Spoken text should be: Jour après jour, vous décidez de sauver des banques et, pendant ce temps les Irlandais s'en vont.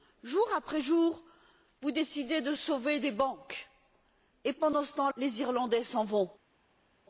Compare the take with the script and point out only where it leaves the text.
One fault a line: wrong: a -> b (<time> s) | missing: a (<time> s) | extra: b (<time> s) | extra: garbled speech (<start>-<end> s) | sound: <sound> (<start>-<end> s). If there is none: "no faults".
no faults